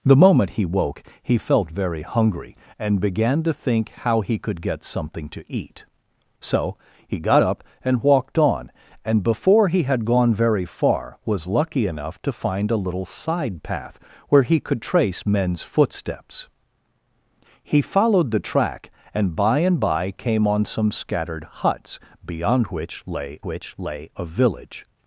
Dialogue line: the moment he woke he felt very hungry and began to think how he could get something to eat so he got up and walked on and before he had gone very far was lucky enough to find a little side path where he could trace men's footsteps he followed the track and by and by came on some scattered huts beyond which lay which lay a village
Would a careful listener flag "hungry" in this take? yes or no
no